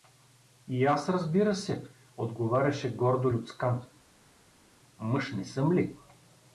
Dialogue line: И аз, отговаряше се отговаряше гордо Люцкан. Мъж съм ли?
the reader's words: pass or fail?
fail